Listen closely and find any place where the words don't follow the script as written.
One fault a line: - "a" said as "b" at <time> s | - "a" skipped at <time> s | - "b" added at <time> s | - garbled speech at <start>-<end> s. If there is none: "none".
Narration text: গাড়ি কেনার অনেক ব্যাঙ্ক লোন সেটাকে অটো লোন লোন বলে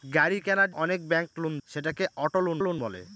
none